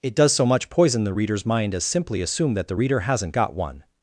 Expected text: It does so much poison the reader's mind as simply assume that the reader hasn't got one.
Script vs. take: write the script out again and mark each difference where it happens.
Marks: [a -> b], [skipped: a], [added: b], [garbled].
It does so much poison the reader's mind as simply assume that the reader hasn't got one.